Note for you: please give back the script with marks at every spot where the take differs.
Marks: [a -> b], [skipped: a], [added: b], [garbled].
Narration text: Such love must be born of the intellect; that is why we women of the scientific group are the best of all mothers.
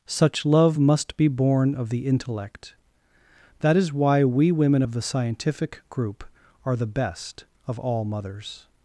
Such love must be born of the intellect; that is why we women of the scientific group are the best of all mothers.